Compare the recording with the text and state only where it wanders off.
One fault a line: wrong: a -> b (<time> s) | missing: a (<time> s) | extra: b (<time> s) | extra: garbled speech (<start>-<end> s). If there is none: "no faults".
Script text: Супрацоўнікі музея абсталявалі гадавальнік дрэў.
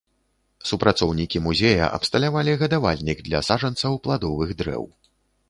extra: для саджанцаў пладовых (3.3 s)